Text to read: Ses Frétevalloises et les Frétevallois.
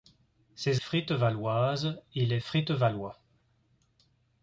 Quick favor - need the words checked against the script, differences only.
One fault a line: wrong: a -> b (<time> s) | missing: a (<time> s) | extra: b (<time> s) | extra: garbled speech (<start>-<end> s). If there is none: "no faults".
no faults